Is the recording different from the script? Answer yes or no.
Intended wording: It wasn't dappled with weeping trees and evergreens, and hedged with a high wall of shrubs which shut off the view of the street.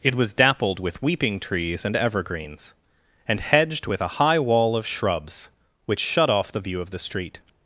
yes